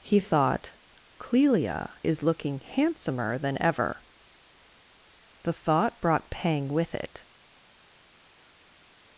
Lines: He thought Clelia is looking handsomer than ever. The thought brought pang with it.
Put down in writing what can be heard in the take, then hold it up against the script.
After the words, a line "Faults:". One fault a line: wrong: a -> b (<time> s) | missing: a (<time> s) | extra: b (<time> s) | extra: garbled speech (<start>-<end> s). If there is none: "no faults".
He thought Clelia is looking handsomer than ever. The thought brought pang with it.
Faults:
no faults